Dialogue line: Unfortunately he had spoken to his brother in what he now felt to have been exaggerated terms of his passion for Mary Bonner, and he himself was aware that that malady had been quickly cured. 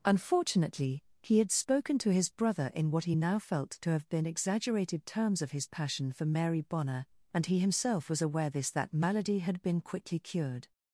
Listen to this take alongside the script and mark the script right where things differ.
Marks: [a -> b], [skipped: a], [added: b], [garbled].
Unfortunately he had spoken to his brother in what he now felt to have been exaggerated terms of his passion for Mary Bonner, and he himself was aware [that -> this] that malady had been quickly cured.